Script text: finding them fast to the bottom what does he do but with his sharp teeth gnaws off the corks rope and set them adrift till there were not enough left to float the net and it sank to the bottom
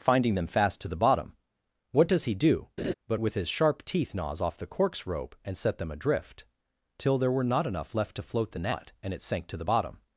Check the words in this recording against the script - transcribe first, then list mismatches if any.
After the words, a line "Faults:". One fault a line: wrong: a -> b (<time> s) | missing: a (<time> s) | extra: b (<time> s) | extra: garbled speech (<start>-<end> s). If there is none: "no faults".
finding them fast to the bottom what does he do but with his sharp teeth gnaws off the corks rope and set them adrift till there were not enough left to float the net and it sank to the bottom
Faults:
no faults